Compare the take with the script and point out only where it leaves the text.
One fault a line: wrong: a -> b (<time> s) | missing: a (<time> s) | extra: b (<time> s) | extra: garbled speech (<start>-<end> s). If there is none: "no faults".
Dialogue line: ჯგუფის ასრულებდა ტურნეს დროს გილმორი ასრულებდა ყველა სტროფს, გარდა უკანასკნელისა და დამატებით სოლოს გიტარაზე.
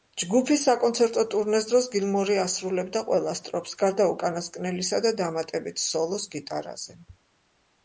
wrong: ასრულებდა -> საკონცერტო (0.7 s)